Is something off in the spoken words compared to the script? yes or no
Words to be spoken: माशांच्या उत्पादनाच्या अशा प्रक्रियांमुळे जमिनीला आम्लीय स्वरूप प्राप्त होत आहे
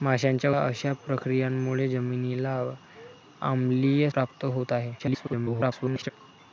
yes